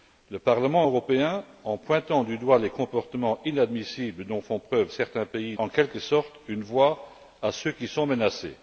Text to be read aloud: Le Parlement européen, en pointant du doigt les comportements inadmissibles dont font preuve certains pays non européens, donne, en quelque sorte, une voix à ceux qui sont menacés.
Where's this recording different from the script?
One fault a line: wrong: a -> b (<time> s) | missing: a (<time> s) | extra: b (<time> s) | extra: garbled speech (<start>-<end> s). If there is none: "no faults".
missing: non européens donne (5.6 s)